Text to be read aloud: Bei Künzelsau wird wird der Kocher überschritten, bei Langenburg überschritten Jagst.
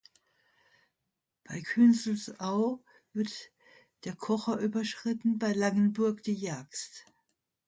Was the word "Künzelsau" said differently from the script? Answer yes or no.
no